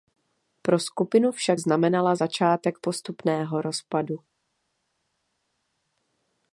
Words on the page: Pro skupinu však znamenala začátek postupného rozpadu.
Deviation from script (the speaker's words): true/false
false